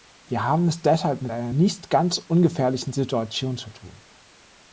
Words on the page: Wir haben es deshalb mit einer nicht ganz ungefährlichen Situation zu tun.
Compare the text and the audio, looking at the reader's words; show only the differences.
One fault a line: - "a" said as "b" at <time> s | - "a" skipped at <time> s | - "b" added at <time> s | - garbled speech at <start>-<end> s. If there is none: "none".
none